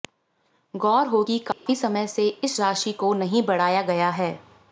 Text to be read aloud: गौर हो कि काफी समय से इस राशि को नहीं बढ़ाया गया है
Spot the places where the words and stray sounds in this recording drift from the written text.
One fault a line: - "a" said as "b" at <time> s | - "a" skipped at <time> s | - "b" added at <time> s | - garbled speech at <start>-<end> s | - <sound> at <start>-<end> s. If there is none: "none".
- dropout at 1.5-1.7 s